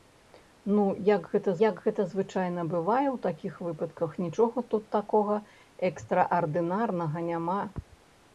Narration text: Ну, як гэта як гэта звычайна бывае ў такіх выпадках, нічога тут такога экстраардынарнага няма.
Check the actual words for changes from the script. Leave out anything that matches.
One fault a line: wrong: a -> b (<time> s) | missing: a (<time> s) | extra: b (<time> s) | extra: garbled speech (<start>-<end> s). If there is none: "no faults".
no faults